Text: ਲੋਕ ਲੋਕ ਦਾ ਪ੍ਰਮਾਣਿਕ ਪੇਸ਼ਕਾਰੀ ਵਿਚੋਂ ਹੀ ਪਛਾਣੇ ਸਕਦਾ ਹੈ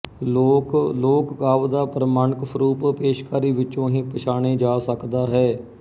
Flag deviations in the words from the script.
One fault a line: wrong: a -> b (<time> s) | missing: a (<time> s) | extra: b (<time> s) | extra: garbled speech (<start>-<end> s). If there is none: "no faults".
extra: ਕਾਵਿ (1.4 s)
extra: ਸਰੂਪ (2.5 s)
extra: ਜਾ (4.5 s)